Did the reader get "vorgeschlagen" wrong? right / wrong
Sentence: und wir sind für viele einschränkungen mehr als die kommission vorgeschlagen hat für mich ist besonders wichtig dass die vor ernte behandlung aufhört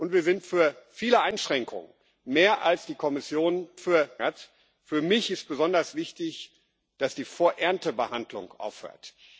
wrong